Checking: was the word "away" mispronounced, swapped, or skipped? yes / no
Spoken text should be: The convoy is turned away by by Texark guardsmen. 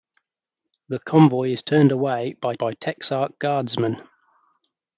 no